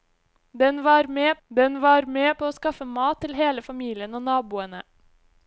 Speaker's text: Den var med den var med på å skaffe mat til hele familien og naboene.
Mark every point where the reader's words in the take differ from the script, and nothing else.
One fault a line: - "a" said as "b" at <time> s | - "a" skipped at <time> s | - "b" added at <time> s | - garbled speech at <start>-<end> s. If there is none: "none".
none